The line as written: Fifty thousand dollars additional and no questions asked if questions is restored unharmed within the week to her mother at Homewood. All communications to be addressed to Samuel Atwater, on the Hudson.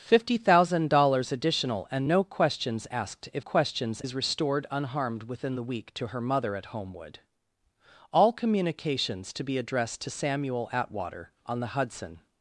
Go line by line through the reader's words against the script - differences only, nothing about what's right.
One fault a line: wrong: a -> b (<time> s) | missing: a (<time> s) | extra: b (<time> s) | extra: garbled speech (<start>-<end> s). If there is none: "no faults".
no faults